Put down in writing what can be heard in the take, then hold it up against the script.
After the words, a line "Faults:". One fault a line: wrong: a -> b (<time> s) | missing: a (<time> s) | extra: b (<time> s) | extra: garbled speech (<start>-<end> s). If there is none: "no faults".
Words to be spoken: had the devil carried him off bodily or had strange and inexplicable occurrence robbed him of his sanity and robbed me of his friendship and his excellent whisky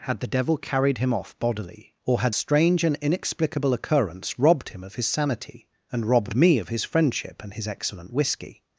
had the devil carried him off bodily or had strange and inexplicable occurrence robbed him of his sanity and robbed me of his friendship and his excellent whisky
Faults:
no faults